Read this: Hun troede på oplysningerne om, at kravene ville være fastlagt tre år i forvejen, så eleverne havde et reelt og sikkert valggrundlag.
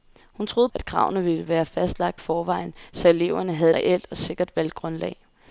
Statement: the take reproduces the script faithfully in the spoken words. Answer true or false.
false